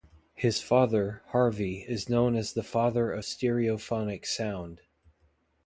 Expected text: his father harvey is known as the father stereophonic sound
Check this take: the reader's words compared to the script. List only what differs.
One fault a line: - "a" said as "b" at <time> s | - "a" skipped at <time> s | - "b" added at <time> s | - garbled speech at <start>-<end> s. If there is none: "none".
- "of" added at 3.1 s